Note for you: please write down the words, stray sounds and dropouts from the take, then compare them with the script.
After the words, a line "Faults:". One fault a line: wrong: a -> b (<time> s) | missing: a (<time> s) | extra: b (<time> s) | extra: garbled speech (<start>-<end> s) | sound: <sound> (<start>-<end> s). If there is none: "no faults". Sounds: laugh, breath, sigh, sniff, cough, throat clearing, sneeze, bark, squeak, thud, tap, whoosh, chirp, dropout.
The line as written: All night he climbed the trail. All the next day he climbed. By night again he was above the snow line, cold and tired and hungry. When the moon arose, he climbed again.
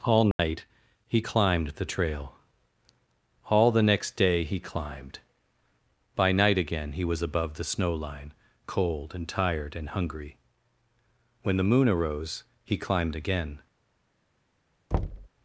All night he climbed the trail. All the next day he climbed. By night again he was above the snow line, cold and tired and hungry. When the moon arose, he climbed again.
Faults:
sound: dropout (0.3-0.4 s)
sound: thud (14.9-15.3 s)